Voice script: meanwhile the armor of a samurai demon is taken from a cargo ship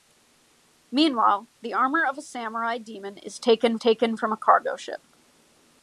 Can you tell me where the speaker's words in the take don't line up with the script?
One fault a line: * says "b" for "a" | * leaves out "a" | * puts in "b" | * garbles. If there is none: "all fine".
* puts in "taken"